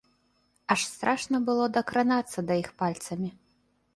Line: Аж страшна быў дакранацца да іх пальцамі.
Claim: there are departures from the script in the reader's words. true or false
true